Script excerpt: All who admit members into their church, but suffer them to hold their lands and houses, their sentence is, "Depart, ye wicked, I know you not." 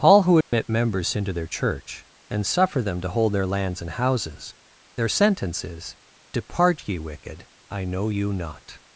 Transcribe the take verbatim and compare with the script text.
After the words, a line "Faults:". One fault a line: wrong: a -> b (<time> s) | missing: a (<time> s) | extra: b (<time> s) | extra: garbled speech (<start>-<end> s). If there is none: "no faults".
All who admit members into their church, and suffer them to hold their lands and houses, their sentence is, "Depart, ye wicked, I know you not."
Faults:
wrong: but -> and (2.3 s)